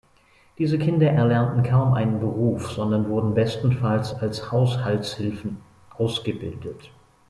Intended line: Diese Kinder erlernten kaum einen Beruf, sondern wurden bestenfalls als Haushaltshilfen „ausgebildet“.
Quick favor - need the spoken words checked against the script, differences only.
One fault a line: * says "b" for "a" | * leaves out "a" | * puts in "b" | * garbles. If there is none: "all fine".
all fine